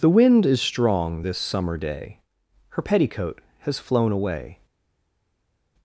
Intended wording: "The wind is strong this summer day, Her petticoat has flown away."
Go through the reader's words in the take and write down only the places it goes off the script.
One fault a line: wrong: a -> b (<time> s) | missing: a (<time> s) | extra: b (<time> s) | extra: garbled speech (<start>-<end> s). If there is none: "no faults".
no faults